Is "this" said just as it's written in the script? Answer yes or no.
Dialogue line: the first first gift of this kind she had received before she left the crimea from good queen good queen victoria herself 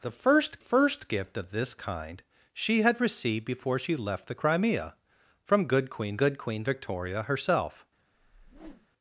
yes